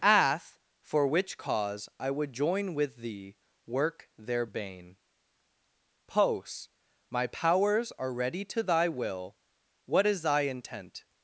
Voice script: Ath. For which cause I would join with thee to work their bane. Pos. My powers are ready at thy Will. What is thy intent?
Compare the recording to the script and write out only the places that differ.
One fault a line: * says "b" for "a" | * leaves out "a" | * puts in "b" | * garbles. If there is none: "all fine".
* leaves out "to"
* says "to" for "at"